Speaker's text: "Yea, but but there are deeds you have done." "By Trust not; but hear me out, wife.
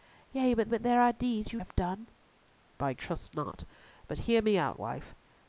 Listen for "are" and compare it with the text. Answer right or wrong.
right